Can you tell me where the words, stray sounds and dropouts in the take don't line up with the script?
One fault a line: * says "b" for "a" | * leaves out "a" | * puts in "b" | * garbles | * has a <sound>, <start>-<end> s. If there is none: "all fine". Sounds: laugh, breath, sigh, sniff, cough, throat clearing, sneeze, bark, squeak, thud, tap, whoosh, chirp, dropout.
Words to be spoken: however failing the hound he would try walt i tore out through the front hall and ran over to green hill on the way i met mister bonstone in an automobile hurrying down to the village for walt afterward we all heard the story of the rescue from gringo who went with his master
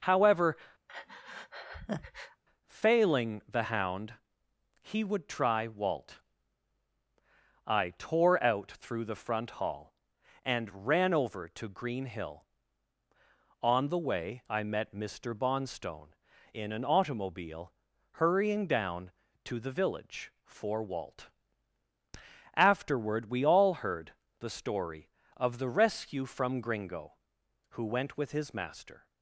* has a breath, 0.9-2.4 s